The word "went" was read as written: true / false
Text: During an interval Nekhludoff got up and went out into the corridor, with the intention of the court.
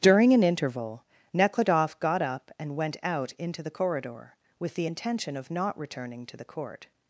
true